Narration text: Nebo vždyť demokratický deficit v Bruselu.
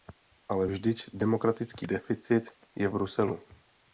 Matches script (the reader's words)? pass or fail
fail